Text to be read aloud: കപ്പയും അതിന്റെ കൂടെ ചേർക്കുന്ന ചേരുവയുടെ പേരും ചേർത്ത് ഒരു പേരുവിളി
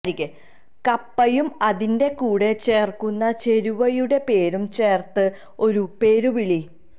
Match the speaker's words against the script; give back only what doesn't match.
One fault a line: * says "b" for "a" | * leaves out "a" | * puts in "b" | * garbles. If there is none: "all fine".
all fine